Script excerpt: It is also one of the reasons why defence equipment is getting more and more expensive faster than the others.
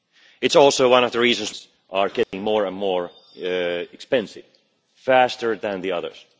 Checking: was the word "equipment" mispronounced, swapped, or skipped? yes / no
yes